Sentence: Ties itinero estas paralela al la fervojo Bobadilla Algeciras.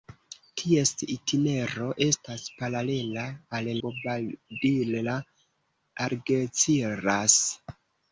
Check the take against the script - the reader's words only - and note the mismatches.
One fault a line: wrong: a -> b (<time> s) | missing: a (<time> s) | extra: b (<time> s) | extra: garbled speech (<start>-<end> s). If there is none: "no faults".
missing: la fervojo (3.7 s)